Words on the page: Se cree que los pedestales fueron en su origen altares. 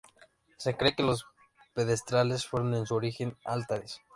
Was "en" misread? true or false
false